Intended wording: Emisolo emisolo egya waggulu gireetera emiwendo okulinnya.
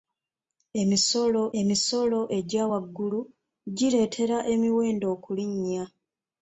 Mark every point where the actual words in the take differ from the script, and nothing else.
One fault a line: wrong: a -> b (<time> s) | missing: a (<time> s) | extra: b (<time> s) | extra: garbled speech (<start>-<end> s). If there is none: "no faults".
no faults